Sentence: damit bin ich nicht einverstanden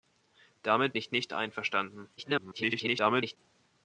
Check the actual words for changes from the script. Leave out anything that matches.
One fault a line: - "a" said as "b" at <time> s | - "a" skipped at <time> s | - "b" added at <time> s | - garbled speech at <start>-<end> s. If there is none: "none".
- "bin" skipped at 0.9 s
- garbled speech at 2.2-3.4 s